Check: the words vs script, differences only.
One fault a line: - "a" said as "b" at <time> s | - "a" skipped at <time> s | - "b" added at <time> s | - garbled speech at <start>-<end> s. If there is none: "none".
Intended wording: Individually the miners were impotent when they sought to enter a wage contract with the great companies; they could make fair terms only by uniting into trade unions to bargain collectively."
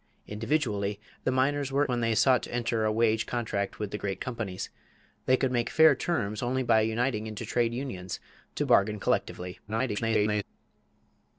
- "impotent" skipped at 1.9 s
- garbled speech at 9.7-10.4 s